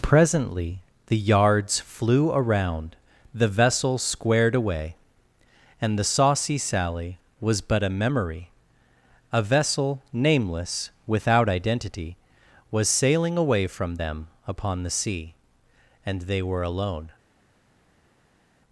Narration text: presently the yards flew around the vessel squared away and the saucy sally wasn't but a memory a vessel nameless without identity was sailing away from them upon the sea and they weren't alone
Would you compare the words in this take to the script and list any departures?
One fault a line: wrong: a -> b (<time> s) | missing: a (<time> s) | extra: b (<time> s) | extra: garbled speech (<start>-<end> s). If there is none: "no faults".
wrong: wasn't -> was (7.4 s)
wrong: weren't -> were (16.4 s)